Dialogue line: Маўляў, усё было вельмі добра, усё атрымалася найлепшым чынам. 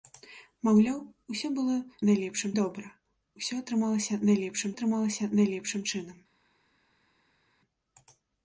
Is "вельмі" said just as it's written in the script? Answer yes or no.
no